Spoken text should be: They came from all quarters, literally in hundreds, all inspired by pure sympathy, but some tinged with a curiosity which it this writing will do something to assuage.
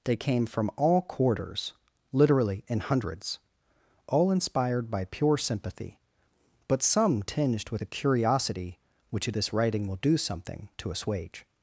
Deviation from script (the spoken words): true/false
false